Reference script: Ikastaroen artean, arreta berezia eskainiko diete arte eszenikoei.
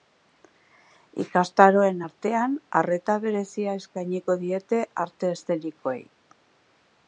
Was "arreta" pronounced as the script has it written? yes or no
yes